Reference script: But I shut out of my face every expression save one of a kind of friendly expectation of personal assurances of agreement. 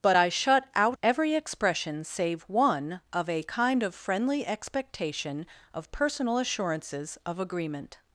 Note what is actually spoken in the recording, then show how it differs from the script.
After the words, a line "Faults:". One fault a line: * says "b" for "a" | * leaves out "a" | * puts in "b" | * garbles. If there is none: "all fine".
But I shut out every expression save one of a kind of friendly expectation of personal assurances of agreement.
Faults:
* leaves out "of my face"